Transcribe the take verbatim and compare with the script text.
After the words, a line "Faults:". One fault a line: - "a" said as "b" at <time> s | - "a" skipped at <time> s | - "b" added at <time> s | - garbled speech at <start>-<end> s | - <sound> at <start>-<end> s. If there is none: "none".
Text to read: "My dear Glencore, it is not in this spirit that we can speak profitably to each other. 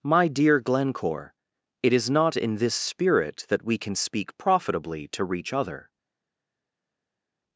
"My dear Glencore, it is not in this spirit that we can speak profitably to reach other.
Faults:
- "each" said as "reach" at 5.2 s